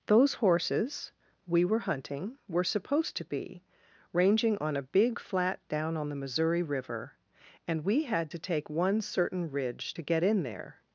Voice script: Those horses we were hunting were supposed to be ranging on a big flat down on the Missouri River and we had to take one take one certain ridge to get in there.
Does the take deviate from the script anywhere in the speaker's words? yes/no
yes